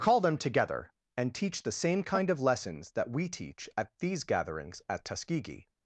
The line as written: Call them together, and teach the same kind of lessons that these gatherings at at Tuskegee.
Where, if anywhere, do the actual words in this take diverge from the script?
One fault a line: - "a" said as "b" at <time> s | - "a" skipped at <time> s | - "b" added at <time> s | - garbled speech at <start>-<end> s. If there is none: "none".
- "we teach at" added at 3.1 s
- "at" skipped at 5.0 s